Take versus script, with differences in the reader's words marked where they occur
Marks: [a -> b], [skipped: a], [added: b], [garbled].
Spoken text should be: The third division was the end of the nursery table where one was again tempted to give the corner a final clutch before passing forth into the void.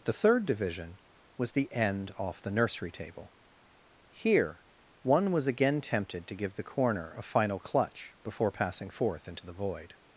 The third division was the end [of -> off] the nursery table [where -> here] one was again tempted to give the corner a final clutch before passing forth into the void.